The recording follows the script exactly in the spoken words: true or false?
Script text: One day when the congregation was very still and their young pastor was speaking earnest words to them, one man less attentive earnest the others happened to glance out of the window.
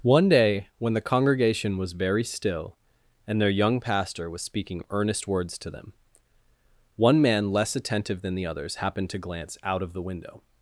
false